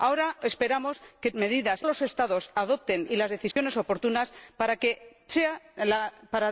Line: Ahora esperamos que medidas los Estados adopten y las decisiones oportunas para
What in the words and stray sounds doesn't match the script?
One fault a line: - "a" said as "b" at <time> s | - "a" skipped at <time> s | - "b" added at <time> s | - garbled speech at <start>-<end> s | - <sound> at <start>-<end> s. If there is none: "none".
- dropout at 3.5-3.6 s